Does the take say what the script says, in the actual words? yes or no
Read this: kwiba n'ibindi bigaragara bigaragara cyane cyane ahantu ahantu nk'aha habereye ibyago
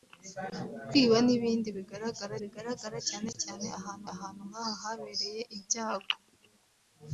yes